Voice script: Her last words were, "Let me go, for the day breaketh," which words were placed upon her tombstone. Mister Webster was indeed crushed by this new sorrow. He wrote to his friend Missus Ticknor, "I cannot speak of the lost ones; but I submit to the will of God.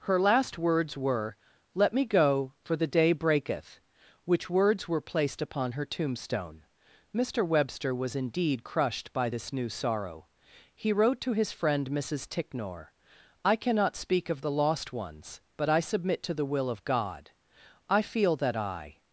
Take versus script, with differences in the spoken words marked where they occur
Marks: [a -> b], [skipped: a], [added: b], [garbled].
Her last words were, "Let me go, for the day breaketh," which words were placed upon her tombstone. Mister Webster was indeed crushed by this new sorrow. He wrote to his friend Missus Ticknor, "I cannot speak of the lost ones; but I submit to the will of God. [added: I feel that I]